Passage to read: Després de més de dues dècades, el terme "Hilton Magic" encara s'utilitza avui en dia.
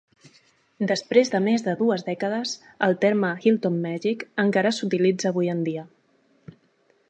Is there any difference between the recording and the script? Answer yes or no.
no